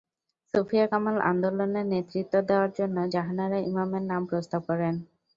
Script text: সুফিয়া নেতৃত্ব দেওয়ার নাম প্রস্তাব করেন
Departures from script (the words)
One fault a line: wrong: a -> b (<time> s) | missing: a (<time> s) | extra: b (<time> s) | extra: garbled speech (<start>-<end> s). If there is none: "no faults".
extra: কামাল আন্দোলনে (0.9 s)
extra: জন্য জাহানারা ইমামের (2.8 s)